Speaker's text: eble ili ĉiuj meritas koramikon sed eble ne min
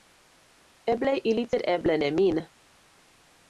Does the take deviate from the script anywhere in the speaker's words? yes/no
yes